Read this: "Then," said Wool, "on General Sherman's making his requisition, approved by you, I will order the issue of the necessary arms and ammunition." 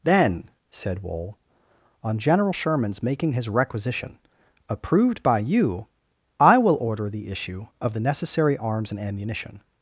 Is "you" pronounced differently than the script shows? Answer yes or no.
no